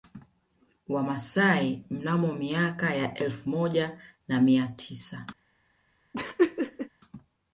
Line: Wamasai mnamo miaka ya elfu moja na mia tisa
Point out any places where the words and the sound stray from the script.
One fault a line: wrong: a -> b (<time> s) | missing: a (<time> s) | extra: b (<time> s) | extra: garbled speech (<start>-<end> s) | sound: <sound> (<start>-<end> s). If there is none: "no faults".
sound: laugh (6.1-6.9 s)